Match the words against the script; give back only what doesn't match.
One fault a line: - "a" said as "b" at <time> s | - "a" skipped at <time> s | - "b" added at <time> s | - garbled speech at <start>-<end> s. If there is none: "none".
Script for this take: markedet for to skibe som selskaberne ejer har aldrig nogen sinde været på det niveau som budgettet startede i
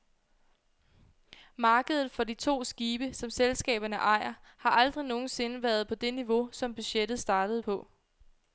- "de" added at 2.2 s
- "i" said as "på" at 7.6 s